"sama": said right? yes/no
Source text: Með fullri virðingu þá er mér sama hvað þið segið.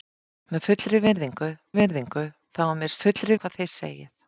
no